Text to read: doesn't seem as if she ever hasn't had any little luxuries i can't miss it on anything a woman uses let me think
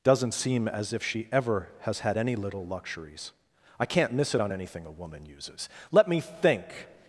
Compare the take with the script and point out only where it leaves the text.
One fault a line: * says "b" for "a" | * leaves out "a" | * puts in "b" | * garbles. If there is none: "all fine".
* says "has" for "hasn't"